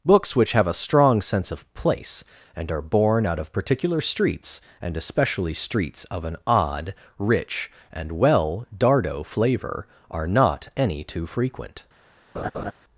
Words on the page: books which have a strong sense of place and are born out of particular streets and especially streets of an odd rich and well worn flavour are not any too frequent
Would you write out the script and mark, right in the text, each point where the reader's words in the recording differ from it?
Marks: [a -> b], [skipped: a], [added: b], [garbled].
books which have a strong sense of place and are born out of particular streets and especially streets of an odd rich and well [worn -> dardo] flavour are not any too frequent